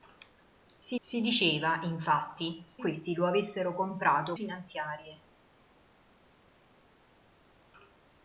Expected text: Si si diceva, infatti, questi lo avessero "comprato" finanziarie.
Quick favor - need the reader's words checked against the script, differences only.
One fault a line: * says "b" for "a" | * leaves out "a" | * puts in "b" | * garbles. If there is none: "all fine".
all fine